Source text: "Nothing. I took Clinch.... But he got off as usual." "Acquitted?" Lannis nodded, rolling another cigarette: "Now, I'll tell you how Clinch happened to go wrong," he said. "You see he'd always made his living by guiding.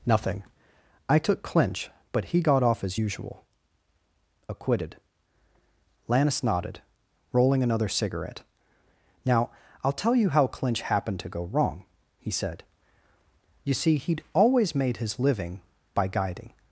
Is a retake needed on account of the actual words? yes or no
no